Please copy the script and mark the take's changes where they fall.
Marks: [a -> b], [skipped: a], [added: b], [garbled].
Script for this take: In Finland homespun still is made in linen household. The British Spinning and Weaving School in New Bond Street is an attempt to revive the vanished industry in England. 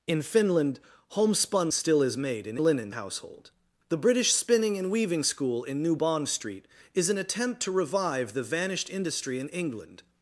In Finland homespun still is made in linen household. The British Spinning and Weaving School in New Bond Street is an attempt to revive the vanished industry in England.